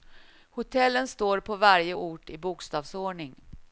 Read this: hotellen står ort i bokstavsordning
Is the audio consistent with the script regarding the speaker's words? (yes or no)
no